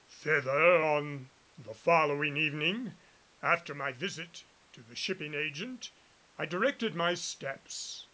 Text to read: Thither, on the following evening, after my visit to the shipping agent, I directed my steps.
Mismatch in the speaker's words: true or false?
false